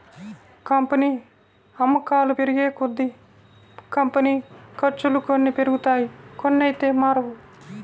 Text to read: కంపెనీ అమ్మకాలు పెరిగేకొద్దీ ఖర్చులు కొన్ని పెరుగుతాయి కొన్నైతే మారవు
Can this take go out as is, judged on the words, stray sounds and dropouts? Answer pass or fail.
fail